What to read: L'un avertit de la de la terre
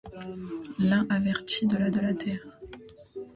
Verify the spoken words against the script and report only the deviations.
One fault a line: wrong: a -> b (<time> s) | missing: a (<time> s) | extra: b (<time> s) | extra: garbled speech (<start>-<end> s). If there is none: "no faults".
no faults